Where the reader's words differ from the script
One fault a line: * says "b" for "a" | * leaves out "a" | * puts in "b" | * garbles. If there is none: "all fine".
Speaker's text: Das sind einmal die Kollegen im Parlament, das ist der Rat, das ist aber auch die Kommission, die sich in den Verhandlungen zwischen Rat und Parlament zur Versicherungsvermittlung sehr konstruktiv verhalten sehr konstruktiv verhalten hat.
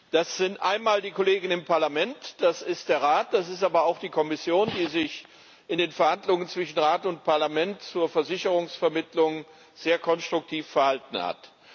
* leaves out "sehr konstruktiv verhalten"